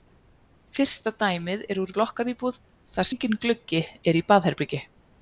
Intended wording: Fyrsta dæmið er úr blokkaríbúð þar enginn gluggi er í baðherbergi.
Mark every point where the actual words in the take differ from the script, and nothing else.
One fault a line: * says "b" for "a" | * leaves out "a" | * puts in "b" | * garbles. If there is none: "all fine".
all fine